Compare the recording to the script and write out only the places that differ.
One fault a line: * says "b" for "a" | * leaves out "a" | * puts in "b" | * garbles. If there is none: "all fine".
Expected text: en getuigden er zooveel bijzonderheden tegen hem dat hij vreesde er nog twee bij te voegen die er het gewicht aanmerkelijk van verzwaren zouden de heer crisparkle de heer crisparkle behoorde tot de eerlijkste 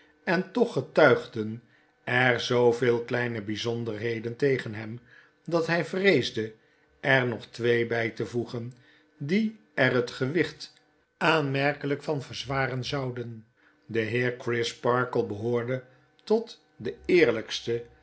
* puts in "toch"
* puts in "kleine"
* leaves out "de heer crisparkle"